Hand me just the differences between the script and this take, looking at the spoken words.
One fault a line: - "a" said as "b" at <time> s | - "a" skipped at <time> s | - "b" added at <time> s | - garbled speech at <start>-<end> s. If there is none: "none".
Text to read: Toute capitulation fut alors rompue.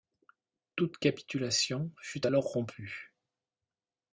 none